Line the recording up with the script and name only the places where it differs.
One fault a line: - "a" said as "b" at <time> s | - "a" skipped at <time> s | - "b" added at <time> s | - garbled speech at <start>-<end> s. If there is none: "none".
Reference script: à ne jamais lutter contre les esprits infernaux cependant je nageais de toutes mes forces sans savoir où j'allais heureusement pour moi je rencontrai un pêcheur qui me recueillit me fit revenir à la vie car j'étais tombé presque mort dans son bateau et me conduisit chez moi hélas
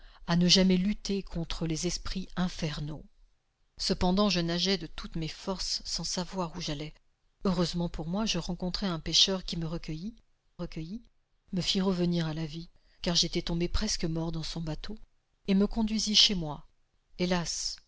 - "recueillit" added at 10.6 s